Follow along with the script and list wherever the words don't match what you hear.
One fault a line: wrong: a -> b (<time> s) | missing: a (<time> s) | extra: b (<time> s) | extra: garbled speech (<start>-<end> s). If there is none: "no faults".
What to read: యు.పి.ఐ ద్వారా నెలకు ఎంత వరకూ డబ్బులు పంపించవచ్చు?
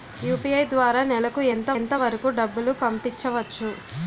extra: ఎంత (1.8 s)